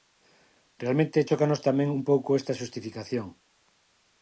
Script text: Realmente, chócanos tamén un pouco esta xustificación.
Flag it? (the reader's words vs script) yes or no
no